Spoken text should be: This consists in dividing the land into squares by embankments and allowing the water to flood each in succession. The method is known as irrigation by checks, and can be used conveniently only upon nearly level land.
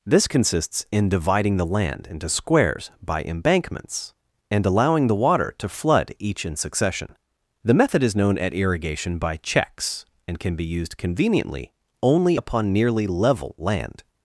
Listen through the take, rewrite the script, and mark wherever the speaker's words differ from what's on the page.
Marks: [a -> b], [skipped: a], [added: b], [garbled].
This consists in dividing the land into squares by embankments and allowing the water to flood each in succession. The method is known [as -> at] irrigation by checks, and can be used conveniently only upon nearly level land.